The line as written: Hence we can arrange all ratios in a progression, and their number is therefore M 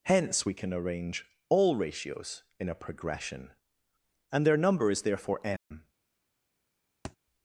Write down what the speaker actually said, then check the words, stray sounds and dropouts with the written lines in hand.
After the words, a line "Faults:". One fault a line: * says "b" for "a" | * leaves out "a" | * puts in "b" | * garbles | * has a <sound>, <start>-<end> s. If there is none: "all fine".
Hence we can arrange all ratios in a progression, and their number is therefore M
Faults:
* has a dropout, 5.6-5.7 s
* has a thud, 7.0-7.2 s